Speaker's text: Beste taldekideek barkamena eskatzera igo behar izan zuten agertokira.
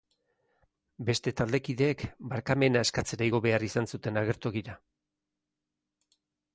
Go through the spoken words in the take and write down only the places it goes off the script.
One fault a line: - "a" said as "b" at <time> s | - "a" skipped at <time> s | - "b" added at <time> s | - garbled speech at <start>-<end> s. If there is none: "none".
none